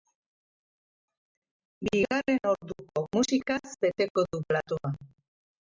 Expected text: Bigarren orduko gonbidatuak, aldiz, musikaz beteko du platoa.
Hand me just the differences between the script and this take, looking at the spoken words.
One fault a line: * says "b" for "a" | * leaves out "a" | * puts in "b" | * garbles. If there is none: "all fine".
* leaves out "gonbidatuak aldiz"